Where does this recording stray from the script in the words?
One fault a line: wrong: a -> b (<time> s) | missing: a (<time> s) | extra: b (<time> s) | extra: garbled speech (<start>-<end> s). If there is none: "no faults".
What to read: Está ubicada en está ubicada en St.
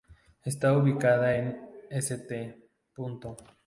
missing: está ubicada en (1.7 s)